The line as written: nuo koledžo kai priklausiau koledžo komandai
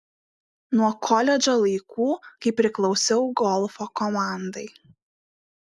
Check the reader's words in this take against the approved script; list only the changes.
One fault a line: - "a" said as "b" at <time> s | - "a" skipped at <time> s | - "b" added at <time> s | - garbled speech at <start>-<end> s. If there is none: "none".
- "laikų" added at 1.6 s
- "koledžo" said as "golfo" at 3.4 s